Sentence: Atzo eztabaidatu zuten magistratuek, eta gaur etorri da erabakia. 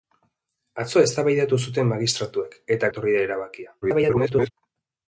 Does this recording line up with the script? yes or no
no